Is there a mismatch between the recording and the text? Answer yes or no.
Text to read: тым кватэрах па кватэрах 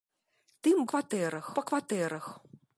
no